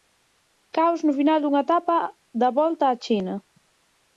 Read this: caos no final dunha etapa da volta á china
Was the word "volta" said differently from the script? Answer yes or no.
no